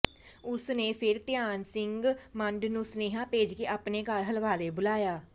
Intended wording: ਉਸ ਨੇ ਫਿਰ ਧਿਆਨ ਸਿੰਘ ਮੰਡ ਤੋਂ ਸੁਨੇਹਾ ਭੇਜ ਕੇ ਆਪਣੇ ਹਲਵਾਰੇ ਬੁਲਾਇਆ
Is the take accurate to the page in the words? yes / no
no